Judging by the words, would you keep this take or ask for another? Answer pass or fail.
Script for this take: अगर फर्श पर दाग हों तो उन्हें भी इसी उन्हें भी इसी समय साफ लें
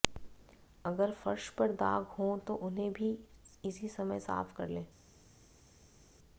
fail